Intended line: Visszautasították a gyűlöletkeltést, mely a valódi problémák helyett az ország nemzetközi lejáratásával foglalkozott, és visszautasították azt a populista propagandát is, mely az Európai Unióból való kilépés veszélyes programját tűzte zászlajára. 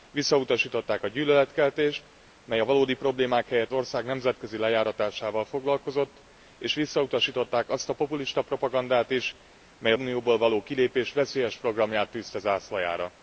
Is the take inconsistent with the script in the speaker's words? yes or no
yes